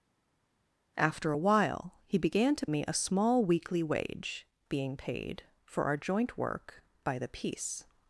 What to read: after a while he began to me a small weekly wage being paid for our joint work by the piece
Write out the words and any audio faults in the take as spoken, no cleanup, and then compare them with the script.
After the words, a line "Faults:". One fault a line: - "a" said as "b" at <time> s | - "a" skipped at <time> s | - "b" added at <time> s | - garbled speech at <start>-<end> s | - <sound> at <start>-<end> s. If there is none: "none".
after a while he began to me a small weekly wage being paid for our joint work by the piece
Faults:
none